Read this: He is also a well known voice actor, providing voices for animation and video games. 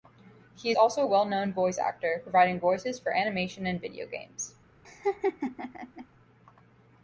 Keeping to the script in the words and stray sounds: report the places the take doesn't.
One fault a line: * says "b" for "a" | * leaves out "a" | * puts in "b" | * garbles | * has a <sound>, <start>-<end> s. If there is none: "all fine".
* leaves out "is"
* has a laugh, 4.8-6.1 s